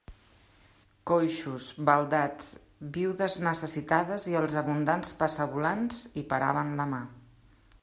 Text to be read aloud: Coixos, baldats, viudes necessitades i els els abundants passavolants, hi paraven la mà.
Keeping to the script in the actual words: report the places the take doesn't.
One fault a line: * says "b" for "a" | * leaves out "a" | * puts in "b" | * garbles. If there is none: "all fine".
* leaves out "els"